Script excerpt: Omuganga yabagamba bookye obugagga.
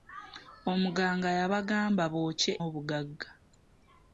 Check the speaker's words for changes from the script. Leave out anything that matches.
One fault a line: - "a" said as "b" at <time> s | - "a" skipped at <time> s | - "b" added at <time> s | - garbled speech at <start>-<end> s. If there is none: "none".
none